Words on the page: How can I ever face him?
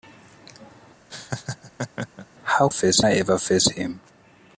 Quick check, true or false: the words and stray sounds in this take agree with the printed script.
false